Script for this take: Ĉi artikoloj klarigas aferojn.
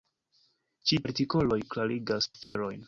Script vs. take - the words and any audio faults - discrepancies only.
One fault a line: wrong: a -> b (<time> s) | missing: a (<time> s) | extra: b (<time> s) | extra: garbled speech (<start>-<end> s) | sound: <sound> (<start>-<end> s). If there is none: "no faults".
sound: dropout (2.4-2.6 s)